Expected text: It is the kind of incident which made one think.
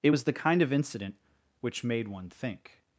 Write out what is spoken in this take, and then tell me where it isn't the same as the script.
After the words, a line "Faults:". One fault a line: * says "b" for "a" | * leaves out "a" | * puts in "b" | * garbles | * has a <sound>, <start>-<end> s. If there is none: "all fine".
It was the kind of incident which made one think.
Faults:
* says "was" for "is"